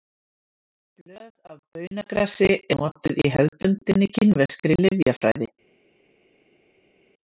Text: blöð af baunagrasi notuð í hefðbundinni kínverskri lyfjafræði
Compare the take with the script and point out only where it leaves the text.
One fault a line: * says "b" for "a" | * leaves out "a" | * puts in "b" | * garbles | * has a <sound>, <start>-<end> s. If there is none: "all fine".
all fine